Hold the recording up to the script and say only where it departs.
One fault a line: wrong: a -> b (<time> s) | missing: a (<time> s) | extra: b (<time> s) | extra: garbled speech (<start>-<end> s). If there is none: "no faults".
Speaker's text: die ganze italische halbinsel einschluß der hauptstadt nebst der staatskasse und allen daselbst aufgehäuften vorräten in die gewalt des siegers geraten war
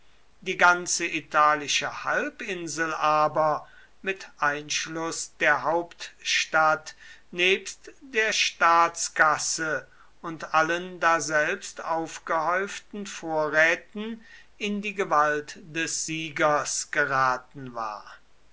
extra: aber mit (2.9 s)